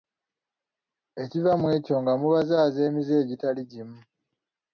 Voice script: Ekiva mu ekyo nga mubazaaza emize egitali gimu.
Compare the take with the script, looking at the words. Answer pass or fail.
pass